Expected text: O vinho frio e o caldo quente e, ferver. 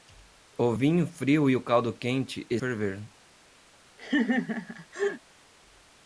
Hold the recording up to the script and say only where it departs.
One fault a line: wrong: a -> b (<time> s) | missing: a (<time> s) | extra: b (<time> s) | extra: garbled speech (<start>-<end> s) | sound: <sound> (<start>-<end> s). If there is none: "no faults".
sound: laugh (4.0-5.2 s)